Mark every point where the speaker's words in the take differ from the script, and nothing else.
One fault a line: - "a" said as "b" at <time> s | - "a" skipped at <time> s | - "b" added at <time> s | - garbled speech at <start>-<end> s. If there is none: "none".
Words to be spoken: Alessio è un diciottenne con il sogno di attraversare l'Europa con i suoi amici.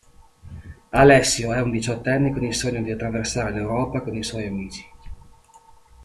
none